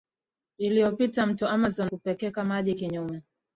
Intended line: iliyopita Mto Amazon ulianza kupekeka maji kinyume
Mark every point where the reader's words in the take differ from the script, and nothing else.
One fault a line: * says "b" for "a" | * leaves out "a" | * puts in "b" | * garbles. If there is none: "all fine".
* leaves out "ulianza"